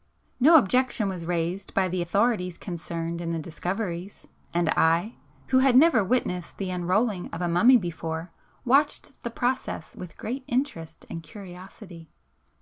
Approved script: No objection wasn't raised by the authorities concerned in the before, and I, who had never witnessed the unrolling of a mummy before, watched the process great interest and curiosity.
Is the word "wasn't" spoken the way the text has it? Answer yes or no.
no